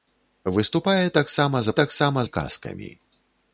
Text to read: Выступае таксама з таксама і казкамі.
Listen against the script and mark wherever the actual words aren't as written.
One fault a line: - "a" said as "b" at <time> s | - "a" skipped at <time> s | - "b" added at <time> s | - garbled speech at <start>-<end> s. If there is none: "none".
none